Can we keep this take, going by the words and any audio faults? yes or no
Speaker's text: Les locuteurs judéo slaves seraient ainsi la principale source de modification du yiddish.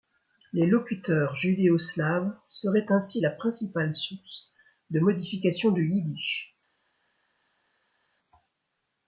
yes